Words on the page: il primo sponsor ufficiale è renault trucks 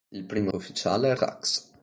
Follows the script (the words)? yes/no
no